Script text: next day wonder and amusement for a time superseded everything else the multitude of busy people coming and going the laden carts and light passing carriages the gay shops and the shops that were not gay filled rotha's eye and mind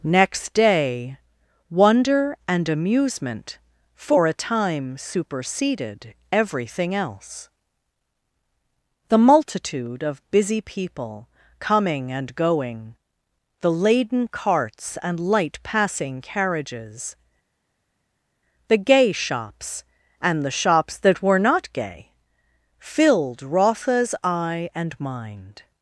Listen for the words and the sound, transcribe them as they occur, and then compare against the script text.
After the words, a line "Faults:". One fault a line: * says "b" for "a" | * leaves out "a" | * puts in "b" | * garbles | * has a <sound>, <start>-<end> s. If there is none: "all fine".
next day wonder and amusement for a time superseded everything else the multitude of busy people coming and going the laden carts and light passing carriages the gay shops and the shops that were not gay filled rotha's eye and mind
Faults:
all fine